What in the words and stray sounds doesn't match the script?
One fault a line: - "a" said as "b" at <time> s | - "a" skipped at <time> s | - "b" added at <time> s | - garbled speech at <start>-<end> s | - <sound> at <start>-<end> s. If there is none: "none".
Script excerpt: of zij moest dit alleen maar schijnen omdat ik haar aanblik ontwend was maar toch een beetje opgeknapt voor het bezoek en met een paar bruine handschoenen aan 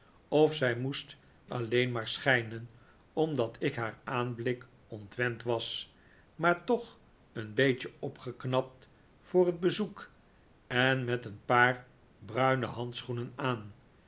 - "dit" skipped at 1.2 s